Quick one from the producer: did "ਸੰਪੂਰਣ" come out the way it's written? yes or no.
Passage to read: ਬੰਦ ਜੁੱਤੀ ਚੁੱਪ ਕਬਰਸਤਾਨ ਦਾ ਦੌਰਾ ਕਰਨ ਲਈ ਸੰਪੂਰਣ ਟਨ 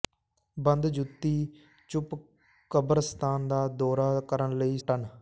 no